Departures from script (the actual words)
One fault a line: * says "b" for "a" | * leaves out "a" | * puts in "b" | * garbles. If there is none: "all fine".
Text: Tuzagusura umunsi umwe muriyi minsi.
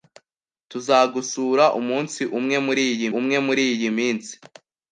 * puts in "umwe muriyi"